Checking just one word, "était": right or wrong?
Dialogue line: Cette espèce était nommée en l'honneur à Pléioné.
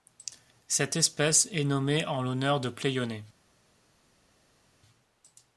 wrong